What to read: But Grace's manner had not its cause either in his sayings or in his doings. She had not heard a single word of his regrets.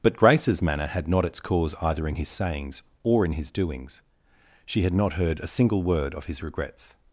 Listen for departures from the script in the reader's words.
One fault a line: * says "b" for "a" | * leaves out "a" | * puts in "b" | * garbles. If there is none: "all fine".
all fine